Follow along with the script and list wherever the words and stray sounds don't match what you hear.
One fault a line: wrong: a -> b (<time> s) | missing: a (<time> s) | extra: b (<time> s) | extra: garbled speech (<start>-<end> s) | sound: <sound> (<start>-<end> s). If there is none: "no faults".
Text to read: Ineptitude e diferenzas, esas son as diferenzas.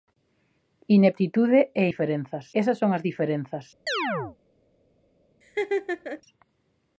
sound: chirp (3.9-4.4 s)
sound: laugh (5.4-6.2 s)